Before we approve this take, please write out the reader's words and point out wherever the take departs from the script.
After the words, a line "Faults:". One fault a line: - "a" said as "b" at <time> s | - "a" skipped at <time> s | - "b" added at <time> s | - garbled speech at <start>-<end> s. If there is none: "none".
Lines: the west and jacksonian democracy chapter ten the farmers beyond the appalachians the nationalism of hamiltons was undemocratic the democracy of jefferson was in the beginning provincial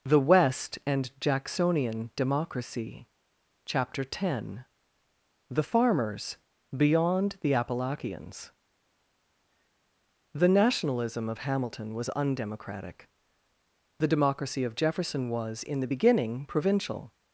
the west and jacksonian democracy chapter ten the farmers beyond the appalachians the nationalism of hamilton was undemocratic the democracy of jefferson was in the beginning provincial
Faults:
- "hamiltons" said as "hamilton" at 11.4 s